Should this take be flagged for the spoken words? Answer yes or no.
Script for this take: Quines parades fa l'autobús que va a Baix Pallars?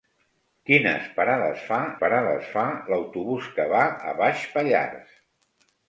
yes